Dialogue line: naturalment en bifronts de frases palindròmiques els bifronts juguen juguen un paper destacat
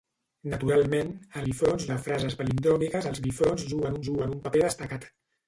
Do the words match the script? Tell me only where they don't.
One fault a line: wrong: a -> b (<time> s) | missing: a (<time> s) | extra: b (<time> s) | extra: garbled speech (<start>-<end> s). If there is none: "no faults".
no faults